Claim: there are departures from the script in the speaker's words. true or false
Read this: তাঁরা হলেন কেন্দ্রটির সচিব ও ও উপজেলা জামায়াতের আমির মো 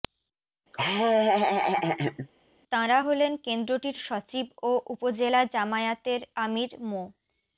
true